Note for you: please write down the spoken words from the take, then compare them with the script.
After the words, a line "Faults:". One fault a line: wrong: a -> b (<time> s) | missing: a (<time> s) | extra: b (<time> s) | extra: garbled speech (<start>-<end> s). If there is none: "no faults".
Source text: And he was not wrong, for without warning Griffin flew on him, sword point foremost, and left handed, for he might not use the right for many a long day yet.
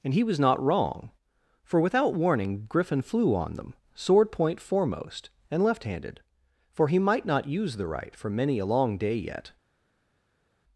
And he was not wrong, for without warning Griffin flew on them, sword point foremost, and left handed, for he might not use the right for many a long day yet.
Faults:
wrong: him -> them (3.5 s)